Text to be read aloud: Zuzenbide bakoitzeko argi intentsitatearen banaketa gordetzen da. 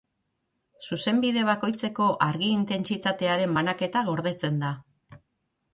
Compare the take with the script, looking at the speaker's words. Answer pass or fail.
pass